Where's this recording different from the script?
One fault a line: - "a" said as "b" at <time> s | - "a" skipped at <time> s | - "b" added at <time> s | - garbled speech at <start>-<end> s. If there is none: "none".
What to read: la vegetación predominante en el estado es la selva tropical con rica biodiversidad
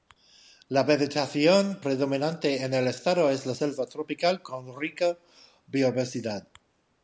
none